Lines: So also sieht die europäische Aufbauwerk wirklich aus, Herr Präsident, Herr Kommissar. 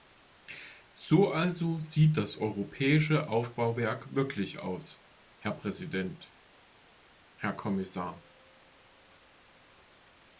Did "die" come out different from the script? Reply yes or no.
yes